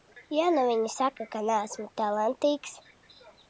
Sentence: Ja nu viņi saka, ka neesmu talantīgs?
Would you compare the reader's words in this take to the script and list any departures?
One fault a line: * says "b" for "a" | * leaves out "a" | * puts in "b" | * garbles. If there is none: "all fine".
all fine